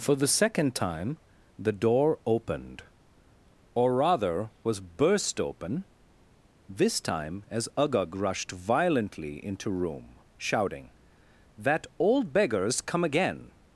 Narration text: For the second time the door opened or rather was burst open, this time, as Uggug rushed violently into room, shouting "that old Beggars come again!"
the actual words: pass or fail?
pass